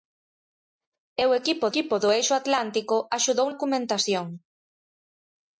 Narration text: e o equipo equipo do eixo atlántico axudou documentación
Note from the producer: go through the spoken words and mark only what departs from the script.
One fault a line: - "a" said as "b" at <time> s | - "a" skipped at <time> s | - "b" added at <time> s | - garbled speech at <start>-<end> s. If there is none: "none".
none